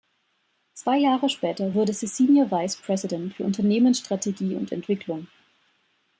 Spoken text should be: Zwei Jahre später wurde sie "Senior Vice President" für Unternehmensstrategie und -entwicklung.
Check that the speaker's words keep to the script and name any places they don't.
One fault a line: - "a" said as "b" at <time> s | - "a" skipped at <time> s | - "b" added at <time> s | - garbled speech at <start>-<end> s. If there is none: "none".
none